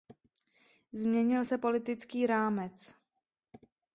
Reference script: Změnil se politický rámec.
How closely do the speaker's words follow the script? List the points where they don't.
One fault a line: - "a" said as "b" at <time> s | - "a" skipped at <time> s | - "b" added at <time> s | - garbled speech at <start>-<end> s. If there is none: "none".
none